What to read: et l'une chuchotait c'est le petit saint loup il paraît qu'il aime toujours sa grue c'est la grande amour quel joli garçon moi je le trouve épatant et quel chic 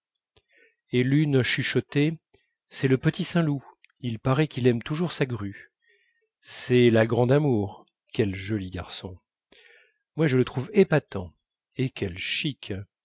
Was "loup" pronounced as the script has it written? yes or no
yes